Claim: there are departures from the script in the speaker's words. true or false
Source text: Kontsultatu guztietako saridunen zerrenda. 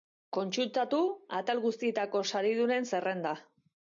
true